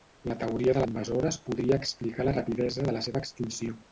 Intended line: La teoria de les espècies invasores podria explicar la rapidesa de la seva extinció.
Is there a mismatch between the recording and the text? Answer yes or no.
yes